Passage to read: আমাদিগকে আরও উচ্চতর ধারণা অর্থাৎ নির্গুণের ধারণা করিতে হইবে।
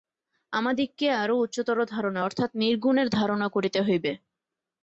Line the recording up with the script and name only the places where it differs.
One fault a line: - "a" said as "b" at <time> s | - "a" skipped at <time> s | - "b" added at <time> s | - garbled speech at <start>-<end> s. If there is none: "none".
none